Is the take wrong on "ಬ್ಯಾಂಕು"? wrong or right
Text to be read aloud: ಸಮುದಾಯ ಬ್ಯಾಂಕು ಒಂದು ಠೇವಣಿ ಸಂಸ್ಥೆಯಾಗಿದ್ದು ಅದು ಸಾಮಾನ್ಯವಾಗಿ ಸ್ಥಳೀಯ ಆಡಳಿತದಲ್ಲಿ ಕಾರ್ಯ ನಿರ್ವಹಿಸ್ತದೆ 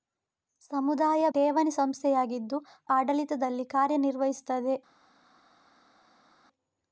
wrong